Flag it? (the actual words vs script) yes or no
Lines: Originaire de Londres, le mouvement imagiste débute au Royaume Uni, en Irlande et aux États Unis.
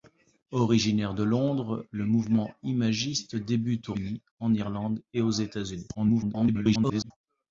yes